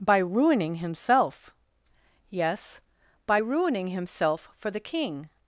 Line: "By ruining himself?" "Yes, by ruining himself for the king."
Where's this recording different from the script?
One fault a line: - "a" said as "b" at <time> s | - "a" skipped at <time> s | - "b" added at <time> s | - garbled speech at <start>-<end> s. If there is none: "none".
none